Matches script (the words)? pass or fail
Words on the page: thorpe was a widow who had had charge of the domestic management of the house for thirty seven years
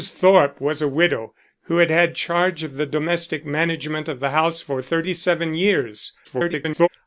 fail